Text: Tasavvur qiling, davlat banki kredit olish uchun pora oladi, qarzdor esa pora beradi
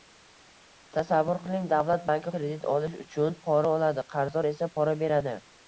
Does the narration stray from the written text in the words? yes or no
no